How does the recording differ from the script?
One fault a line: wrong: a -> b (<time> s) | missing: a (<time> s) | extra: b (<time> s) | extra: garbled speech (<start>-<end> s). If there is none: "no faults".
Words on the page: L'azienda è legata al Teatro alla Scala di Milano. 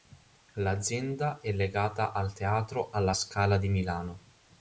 no faults